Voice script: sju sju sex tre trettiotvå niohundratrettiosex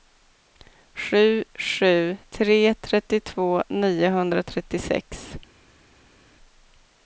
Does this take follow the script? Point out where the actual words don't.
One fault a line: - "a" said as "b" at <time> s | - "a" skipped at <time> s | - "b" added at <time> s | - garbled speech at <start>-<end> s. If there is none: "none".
- "sex" skipped at 2.2 s